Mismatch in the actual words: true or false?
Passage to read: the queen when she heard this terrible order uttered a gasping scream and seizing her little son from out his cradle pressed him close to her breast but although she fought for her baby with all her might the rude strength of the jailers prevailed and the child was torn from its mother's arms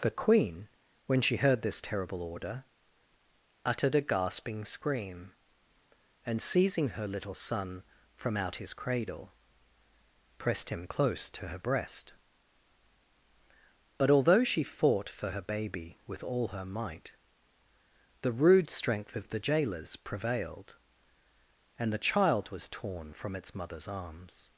false